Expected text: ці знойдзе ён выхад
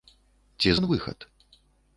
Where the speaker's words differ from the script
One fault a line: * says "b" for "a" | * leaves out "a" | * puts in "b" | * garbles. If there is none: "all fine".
* leaves out "знойдзе"